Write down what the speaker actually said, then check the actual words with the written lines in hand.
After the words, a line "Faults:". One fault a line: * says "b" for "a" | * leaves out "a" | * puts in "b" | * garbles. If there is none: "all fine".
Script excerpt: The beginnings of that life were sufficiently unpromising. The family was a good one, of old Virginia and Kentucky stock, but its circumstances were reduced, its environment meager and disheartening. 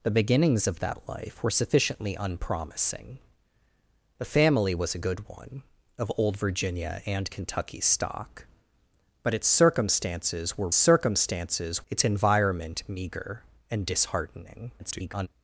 The beginnings of that life were sufficiently unpromising. The family was a good one, of old Virginia and Kentucky stock, but its circumstances were circumstances, its environment meager and disheartening. [garbled]
Faults:
* says "circumstances" for "reduced"
* garbles